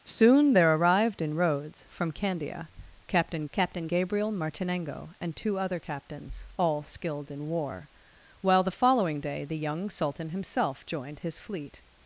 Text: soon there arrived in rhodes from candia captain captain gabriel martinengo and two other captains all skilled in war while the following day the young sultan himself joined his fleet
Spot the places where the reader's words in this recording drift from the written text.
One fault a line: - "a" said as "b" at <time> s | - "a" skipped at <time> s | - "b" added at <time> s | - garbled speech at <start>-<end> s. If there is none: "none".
none